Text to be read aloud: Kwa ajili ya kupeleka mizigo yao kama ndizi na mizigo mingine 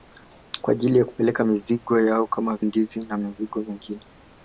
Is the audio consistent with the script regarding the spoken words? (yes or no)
yes